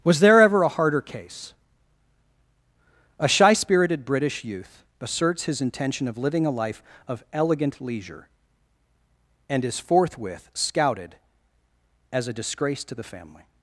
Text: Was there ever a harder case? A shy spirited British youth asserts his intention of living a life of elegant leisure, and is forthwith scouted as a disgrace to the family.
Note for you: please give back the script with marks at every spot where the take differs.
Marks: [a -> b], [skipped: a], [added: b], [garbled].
Was there ever a harder case? A shy spirited British youth asserts his intention of living a life of elegant leisure, and is forthwith scouted as a disgrace to the family.